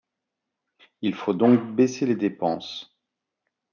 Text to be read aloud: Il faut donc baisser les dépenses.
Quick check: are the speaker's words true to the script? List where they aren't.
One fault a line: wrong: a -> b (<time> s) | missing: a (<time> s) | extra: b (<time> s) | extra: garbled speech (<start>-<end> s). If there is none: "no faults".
no faults